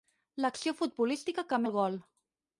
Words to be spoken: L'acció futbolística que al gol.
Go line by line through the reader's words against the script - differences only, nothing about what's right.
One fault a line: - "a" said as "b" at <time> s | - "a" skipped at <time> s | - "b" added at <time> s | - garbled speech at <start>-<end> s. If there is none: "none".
none